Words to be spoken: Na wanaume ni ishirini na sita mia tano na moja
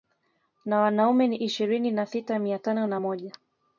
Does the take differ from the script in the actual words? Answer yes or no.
no